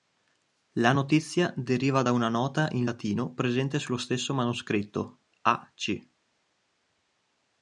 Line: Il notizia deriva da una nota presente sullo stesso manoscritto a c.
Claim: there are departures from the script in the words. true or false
true